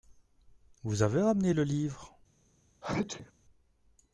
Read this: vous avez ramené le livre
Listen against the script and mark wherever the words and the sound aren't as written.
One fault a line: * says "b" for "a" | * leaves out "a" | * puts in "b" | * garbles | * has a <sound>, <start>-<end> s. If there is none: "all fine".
* has a sneeze, 2.8-3.3 s